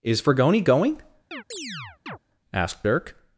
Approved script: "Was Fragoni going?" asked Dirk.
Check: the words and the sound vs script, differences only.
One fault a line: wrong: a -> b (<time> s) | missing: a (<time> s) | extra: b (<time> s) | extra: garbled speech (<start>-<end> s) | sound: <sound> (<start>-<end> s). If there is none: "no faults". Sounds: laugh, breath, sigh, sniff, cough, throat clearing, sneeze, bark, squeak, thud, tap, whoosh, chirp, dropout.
wrong: Was -> Is (0.0 s)
sound: chirp (1.3-2.2 s)